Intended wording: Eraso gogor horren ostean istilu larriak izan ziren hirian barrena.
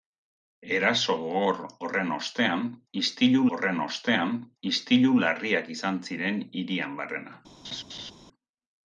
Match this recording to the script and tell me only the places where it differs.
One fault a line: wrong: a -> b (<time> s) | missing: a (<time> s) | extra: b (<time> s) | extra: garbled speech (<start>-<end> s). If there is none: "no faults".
extra: horren ostean istilu (3.6 s)